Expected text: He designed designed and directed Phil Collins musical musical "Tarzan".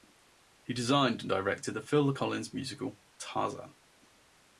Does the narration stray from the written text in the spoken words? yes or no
yes